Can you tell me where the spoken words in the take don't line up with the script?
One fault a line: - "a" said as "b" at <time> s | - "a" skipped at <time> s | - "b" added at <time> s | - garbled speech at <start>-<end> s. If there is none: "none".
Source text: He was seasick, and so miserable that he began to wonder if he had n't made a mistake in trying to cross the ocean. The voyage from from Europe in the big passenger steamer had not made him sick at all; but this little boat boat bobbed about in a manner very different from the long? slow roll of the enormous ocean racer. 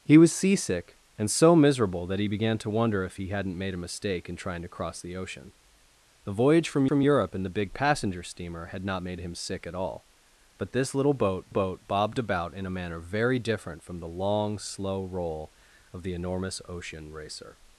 none